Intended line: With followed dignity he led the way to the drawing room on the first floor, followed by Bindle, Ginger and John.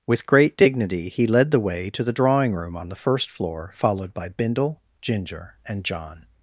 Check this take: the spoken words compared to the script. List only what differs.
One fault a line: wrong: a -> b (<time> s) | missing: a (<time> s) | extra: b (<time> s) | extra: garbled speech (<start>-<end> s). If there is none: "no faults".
wrong: followed -> great (0.2 s)